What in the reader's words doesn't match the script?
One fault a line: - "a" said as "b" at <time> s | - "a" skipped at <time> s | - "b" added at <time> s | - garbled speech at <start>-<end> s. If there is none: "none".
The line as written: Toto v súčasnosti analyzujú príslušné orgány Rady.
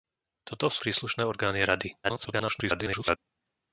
- "súčasnosti analyzujú" skipped at 0.8 s
- garbled speech at 2.0-3.2 s